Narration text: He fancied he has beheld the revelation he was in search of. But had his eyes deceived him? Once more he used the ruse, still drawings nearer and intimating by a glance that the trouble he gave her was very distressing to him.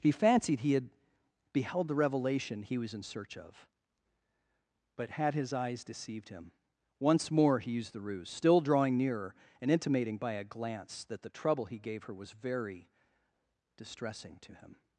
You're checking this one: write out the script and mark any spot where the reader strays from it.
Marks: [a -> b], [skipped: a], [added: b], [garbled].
He fancied he [has -> had] beheld the revelation he was in search of. But had his eyes deceived him? Once more he used the ruse, still [drawings -> drawing] nearer and intimating by a glance that the trouble he gave her was very distressing to him.